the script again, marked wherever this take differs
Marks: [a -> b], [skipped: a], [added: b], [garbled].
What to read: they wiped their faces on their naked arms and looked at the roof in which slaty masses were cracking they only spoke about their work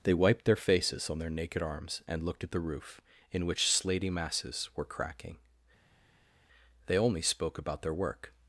they wiped their faces on their naked arms and looked at the roof in which slaty masses were cracking they only spoke about their work